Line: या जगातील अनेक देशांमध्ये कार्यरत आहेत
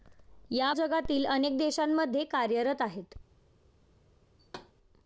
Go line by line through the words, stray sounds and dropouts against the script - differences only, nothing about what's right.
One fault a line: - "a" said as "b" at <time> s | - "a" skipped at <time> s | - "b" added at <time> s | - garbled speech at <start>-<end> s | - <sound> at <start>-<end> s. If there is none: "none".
- thud at 4.4-4.7 s